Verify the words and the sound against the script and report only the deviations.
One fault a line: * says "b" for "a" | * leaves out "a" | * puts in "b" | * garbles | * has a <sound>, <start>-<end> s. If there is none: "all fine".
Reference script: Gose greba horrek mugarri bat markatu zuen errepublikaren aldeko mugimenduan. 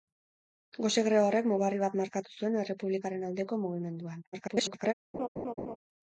* garbles
* has a laugh, 5.1-5.8 s